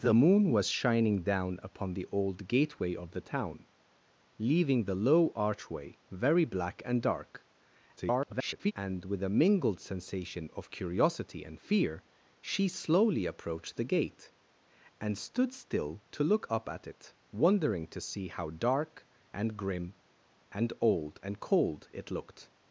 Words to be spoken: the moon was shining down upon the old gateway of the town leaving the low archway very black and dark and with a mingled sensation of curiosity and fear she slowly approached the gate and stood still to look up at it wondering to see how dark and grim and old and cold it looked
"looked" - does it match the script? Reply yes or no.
yes